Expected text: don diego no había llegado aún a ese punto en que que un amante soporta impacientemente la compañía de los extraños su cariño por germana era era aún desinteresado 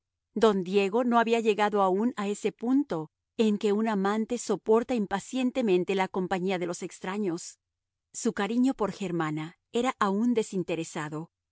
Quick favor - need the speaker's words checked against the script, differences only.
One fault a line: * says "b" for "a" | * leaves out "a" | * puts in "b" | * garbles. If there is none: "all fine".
* leaves out "que"
* leaves out "era"